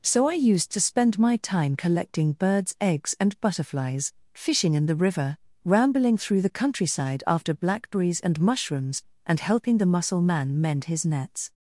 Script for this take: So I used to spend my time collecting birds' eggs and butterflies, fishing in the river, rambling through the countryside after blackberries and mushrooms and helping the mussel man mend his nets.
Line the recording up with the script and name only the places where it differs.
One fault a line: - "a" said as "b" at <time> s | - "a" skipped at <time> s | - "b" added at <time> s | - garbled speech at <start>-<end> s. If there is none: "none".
none